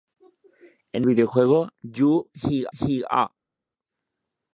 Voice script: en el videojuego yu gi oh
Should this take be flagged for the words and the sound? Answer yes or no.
yes